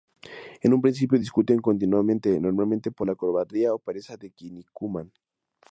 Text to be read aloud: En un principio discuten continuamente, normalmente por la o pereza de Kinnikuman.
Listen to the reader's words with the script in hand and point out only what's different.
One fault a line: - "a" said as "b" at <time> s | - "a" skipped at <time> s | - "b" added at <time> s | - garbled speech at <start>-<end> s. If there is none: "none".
- "cobardía" added at 3.2 s